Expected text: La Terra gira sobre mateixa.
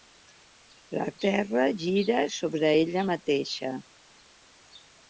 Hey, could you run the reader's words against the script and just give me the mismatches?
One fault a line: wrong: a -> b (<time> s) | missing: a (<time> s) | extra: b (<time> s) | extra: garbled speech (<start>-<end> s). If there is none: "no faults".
extra: ella (2.8 s)